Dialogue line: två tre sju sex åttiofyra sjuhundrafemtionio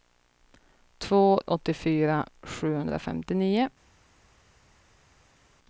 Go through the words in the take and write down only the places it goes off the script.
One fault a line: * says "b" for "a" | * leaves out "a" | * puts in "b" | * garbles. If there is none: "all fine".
* leaves out "tre sju sex"